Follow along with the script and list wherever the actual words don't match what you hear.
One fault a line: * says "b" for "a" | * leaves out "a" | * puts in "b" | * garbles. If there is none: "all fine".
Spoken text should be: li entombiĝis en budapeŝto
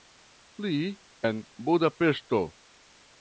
* leaves out "entombiĝis"